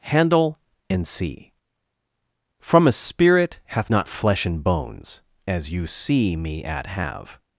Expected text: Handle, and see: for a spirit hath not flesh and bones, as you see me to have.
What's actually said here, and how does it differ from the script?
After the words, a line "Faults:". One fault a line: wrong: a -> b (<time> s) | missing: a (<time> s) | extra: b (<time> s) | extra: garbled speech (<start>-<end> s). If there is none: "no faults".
Handle, and see: from a spirit hath not flesh and bones, as you see me at have.
Faults:
wrong: for -> from (2.6 s)
wrong: to -> at (6.6 s)